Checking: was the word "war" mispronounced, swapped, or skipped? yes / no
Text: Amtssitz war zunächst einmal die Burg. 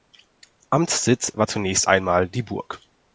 no